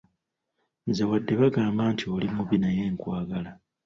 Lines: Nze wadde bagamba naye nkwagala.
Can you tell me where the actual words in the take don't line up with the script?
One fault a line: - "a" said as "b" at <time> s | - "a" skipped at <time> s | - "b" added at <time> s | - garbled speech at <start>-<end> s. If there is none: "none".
- "nti oli mubi" added at 1.9 s